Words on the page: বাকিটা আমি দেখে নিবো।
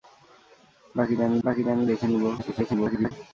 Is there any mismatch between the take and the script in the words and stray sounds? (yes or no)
yes